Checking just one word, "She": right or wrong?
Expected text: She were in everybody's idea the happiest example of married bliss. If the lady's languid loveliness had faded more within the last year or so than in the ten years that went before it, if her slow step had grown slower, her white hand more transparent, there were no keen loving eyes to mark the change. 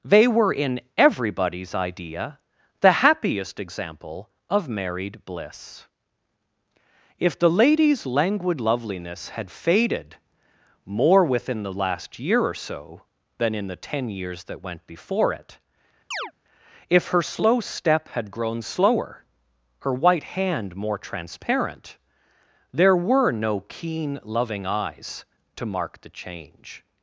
wrong